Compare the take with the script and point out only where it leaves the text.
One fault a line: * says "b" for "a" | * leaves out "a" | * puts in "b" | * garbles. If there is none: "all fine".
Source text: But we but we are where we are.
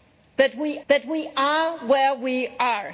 all fine